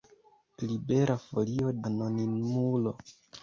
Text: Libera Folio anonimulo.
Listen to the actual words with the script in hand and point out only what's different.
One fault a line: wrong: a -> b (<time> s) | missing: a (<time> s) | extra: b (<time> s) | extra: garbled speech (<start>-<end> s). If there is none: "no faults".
no faults